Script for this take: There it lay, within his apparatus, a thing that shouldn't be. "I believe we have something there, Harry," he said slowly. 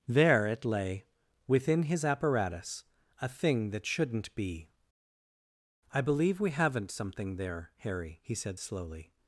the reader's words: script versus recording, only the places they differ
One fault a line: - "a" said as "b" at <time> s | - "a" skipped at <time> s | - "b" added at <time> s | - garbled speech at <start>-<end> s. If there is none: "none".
- "have" said as "haven't" at 6.5 s